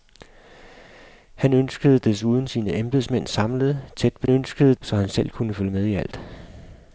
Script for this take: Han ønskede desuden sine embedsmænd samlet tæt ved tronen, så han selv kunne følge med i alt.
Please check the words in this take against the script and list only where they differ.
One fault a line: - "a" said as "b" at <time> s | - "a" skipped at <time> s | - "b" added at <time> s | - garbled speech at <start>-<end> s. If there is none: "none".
- "tronen" said as "ønskede" at 4.3 s